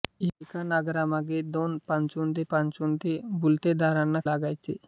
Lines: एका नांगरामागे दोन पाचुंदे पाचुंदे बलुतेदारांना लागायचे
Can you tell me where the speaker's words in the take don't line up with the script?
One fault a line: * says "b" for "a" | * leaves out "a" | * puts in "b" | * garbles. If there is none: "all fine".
all fine